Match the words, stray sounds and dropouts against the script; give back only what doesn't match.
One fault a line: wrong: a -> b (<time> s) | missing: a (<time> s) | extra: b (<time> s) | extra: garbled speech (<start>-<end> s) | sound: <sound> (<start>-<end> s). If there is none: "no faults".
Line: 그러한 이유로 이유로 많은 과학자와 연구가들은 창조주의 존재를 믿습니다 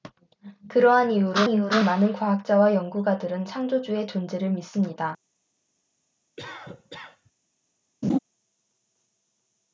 sound: cough (6.4-7.3 s)
sound: laugh (8.0-8.2 s)